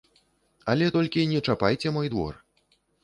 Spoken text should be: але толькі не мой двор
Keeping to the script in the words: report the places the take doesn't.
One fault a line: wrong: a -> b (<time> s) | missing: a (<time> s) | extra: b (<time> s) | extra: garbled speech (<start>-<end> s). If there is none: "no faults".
extra: чапайце (1.5 s)